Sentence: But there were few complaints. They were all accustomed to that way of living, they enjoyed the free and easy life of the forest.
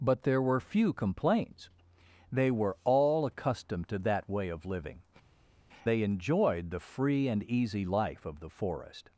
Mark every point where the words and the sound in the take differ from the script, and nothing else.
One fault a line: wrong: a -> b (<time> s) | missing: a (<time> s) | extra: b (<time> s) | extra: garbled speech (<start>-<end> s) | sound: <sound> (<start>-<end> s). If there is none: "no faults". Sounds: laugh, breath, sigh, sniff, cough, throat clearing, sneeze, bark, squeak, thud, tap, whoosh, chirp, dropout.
no faults